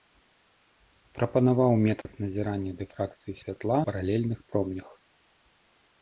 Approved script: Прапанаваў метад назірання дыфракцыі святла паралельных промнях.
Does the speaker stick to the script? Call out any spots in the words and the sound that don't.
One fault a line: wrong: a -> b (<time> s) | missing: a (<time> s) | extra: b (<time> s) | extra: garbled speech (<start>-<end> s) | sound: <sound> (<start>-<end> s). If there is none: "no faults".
sound: dropout (2.0-2.1 s)